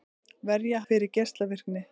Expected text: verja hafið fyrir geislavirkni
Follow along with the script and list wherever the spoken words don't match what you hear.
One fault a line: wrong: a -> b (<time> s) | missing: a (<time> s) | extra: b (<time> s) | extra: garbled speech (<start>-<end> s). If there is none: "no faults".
missing: hafið (0.8 s)